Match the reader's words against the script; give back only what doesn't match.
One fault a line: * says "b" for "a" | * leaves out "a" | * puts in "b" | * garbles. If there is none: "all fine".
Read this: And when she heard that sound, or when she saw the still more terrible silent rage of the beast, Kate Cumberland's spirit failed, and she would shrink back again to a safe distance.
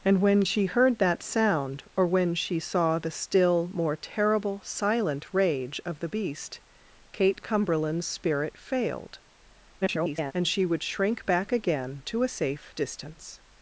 * garbles